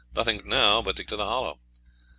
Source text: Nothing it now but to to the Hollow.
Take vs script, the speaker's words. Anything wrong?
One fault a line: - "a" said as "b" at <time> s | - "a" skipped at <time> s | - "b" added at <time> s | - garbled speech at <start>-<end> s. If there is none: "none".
none